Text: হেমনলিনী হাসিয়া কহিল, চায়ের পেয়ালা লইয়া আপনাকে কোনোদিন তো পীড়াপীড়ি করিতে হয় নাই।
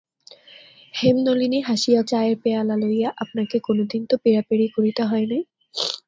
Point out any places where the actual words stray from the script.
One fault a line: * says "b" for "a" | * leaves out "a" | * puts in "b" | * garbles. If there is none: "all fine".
* leaves out "কহিল"